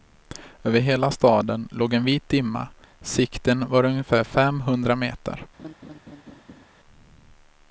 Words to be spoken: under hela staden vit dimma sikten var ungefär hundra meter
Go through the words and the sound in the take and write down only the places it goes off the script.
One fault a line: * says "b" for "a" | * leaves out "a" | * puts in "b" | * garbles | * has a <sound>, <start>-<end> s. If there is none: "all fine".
* says "över" for "under"
* puts in "låg en"
* puts in "fem"
* has a laugh, 5.6-6.6 s